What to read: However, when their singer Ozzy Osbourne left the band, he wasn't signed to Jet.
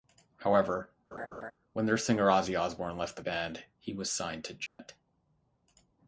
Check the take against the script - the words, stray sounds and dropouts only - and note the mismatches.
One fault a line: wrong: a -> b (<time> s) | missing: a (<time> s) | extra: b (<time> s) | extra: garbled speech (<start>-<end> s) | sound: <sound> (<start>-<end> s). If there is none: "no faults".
sound: laugh (1.1-1.5 s)
wrong: wasn't -> was (3.9 s)
sound: dropout (4.7-4.8 s)